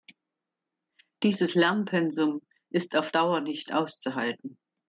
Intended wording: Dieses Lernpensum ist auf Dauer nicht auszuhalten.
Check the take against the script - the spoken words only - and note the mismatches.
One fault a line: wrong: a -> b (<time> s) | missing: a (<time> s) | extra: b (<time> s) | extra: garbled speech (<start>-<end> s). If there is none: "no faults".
no faults